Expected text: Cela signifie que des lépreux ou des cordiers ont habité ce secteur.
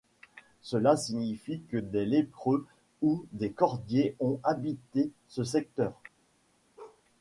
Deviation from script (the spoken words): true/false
false